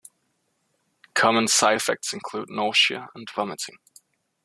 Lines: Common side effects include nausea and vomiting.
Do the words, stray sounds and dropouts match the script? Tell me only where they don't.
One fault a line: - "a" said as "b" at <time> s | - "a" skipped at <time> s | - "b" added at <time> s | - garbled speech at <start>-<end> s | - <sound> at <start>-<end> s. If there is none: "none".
none